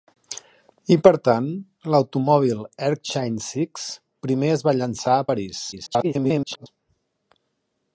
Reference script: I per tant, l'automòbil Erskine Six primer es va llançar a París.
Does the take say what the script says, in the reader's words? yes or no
no